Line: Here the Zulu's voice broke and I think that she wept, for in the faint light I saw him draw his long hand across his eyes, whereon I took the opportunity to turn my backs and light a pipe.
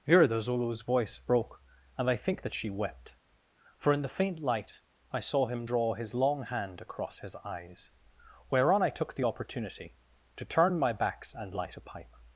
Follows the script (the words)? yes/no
yes